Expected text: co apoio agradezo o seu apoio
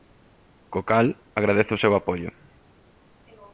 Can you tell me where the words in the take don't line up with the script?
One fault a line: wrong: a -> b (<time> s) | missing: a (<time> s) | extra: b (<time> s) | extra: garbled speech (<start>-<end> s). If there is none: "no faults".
wrong: apoio -> cal (0.9 s)